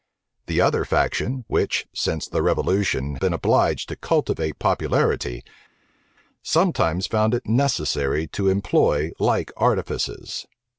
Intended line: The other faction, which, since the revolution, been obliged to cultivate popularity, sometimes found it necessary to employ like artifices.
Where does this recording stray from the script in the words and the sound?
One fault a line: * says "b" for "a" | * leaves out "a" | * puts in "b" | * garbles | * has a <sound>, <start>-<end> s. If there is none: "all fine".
all fine